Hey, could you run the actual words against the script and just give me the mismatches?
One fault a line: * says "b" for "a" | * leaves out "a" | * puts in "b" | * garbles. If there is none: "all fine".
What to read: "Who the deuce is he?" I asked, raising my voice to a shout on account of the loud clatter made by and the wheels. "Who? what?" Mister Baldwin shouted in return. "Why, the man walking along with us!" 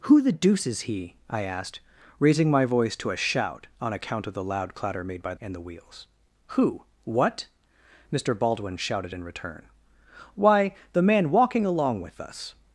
all fine